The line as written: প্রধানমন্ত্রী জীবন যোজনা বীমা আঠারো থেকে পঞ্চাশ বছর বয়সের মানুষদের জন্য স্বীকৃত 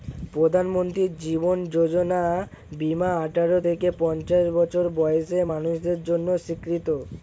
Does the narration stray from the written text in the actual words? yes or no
no